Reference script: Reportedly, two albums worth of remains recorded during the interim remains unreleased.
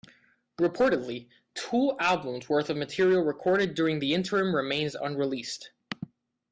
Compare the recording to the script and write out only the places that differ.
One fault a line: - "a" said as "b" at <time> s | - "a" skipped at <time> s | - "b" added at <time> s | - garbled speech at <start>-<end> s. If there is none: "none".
- "remains" said as "material" at 2.7 s